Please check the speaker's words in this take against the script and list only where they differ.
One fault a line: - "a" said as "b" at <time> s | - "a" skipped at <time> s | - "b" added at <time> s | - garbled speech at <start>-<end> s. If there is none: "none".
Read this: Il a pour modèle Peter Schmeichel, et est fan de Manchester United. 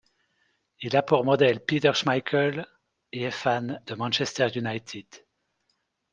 none